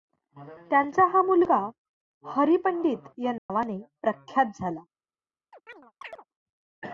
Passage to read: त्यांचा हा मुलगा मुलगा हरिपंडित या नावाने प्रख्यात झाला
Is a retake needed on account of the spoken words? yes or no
yes